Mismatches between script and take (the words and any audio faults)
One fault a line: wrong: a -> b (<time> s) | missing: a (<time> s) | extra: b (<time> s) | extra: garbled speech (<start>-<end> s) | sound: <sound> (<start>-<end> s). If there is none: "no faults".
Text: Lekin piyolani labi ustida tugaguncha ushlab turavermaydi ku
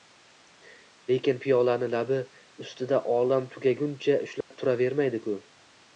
extra: olam (3.2 s)
sound: dropout (4.4-4.5 s)